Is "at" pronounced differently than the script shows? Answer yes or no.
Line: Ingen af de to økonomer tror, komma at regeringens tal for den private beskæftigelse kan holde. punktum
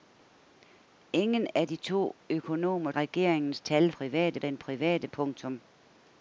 yes